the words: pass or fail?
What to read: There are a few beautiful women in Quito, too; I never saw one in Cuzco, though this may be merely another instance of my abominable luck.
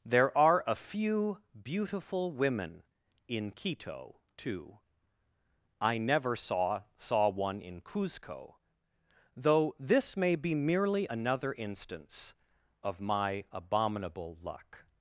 fail